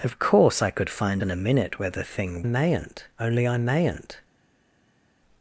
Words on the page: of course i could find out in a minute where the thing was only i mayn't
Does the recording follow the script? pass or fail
fail